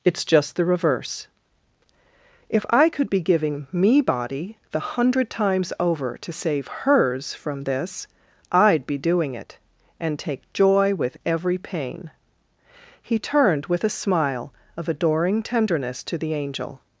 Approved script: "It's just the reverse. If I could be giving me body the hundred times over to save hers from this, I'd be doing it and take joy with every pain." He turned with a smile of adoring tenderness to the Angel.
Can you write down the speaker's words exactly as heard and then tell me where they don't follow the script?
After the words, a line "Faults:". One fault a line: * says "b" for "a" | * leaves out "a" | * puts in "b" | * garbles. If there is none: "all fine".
"It's just the reverse. If I could be giving me body the hundred times over to save hers from this, I'd be doing it and take joy with every pain." He turned with a smile of adoring tenderness to the Angel.
Faults:
all fine